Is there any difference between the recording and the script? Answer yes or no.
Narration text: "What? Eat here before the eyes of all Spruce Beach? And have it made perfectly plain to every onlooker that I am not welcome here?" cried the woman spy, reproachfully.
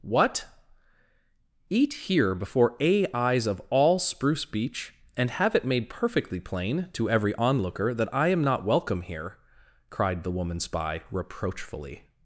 yes